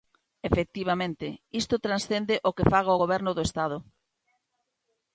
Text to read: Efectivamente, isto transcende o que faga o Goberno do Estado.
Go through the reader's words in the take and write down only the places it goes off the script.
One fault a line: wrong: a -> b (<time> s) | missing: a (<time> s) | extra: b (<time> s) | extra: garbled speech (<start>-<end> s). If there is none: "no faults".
no faults